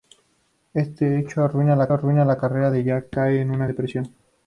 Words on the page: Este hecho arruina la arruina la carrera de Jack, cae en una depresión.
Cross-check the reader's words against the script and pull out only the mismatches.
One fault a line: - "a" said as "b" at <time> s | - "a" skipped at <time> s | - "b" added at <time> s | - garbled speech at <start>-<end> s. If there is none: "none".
none